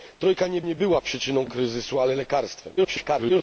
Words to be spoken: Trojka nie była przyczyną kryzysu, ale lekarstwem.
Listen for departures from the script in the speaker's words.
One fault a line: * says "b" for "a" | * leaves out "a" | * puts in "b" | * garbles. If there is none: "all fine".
* puts in "nie"
* garbles